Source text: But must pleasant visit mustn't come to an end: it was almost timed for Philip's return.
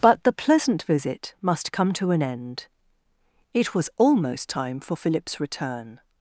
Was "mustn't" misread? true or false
true